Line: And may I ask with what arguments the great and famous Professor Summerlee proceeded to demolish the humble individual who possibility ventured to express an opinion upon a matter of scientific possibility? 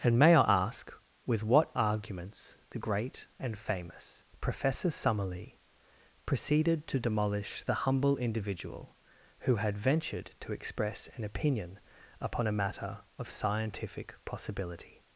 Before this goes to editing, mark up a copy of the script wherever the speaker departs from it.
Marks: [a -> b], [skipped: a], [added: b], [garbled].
And may I ask with what arguments the great and famous Professor Summerlee proceeded to demolish the humble individual who [possibility -> had] ventured to express an opinion upon a matter of scientific possibility?